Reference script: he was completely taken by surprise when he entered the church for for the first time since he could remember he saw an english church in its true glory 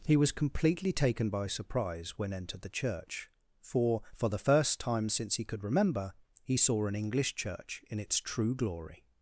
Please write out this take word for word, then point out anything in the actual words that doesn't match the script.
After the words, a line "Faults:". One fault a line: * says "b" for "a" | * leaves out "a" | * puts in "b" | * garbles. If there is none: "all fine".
he was completely taken by surprise when entered the church for for the first time since he could remember he saw an english church in its true glory
Faults:
* leaves out "he"